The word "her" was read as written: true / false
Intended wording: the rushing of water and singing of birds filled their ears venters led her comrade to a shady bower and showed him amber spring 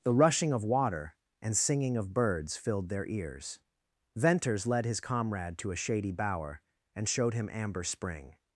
false